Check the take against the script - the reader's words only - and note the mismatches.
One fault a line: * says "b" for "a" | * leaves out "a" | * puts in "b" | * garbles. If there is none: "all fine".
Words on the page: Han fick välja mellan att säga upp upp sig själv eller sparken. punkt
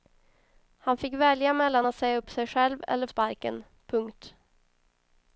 all fine